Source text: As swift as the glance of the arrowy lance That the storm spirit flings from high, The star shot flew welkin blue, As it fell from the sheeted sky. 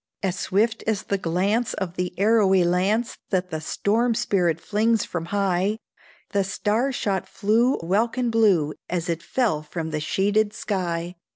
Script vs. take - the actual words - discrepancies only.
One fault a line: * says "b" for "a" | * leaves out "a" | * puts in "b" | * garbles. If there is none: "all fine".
all fine